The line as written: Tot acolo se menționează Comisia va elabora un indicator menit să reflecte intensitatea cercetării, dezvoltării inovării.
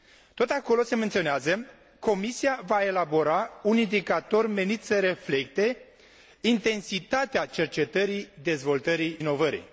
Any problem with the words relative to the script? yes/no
no